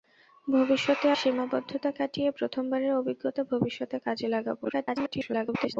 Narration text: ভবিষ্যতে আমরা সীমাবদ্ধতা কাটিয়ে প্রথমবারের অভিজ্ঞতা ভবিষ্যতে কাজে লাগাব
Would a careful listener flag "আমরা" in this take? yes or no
yes